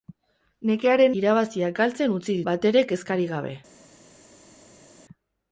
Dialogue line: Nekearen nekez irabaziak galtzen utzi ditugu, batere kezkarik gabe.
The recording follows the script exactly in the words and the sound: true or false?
false